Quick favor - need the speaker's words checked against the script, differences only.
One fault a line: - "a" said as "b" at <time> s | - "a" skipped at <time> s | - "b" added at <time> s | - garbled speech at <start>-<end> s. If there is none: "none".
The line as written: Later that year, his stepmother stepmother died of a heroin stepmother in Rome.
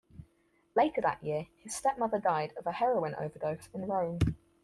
- "stepmother" skipped at 2.2 s
- "stepmother" said as "overdose" at 3.1 s